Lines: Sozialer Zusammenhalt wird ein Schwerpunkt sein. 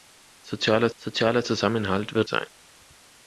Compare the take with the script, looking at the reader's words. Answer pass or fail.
fail